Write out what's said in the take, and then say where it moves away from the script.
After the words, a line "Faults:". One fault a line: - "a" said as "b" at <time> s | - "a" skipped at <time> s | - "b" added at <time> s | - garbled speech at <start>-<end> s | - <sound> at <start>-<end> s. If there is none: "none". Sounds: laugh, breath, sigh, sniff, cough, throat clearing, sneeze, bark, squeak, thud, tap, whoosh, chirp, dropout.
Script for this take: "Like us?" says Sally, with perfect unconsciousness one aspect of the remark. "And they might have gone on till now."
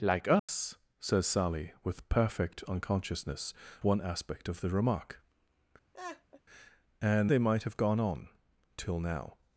"Like us?" says Sally, with perfect unconsciousness one aspect of the remark. "And they might have gone on till now."
Faults:
- dropout at 0.4-0.5 s
- laugh at 5.9-6.4 s